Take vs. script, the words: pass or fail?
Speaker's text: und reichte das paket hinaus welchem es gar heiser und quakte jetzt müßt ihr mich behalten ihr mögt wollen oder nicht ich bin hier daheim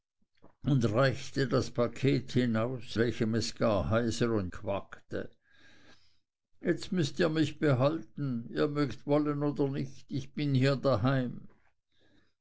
pass